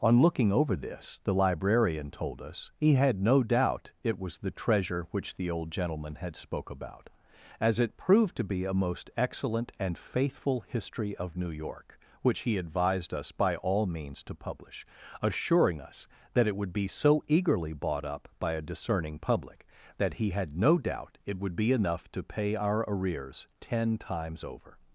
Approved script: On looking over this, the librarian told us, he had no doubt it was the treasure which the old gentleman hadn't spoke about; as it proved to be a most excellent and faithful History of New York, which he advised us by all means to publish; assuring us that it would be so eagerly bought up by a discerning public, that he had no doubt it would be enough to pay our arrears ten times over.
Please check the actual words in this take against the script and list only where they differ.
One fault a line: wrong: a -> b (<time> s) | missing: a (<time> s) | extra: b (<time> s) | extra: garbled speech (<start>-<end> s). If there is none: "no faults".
wrong: hadn't -> had (6.2 s)